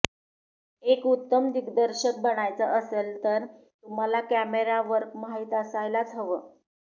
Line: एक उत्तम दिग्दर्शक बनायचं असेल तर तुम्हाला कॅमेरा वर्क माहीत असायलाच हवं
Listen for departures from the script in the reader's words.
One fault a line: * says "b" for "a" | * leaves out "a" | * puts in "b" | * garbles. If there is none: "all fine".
all fine